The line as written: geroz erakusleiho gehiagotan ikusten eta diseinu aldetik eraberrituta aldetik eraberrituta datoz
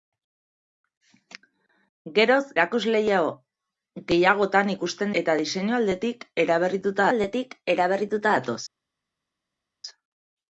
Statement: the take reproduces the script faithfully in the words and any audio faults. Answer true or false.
true